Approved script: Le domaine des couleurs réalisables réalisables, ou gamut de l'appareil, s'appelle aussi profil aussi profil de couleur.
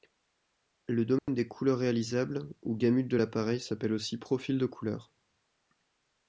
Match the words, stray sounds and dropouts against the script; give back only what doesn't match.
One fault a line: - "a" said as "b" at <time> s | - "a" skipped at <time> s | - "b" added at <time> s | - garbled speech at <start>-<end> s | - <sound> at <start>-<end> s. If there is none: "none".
- dropout at 1.2-1.3 s
- "réalisables" skipped at 2.5 s
- "aussi profil" skipped at 4.6 s